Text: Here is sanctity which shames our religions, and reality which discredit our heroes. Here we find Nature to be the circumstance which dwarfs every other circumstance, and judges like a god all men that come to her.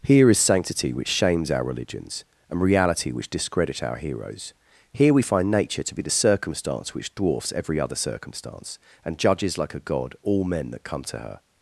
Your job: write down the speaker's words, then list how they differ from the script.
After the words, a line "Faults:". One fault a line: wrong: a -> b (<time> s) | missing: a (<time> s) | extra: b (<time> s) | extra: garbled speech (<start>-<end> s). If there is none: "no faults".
Here is sanctity which shames our religions, and reality which discredit our heroes. Here we find Nature to be the circumstance which dwarfs every other circumstance, and judges like a god all men that come to her.
Faults:
no faults